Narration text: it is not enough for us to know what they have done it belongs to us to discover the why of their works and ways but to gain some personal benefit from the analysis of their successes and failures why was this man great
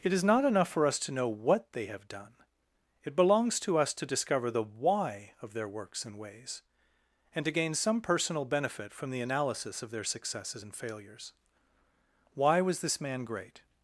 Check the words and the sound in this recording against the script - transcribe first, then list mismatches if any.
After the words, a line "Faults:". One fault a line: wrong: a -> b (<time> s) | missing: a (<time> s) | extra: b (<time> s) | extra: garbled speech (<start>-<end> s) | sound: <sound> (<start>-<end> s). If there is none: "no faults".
it is not enough for us to know what they have done it belongs to us to discover the why of their works and ways and to gain some personal benefit from the analysis of their successes and failures why was this man great
Faults:
wrong: but -> and (7.3 s)